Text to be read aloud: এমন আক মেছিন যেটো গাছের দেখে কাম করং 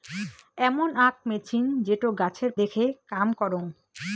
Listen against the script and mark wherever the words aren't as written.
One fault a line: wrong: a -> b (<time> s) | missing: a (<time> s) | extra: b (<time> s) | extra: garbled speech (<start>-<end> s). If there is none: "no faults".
no faults